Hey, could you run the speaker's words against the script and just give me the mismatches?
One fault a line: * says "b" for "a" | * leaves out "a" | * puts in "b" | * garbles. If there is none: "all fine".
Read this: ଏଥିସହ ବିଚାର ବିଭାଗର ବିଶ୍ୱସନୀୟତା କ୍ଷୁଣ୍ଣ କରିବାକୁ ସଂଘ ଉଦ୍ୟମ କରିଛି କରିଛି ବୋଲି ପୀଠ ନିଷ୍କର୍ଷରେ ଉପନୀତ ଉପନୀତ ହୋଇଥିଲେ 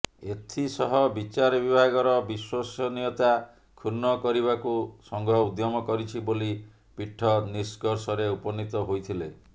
* leaves out "କରିଛି"
* leaves out "ଉପନୀତ"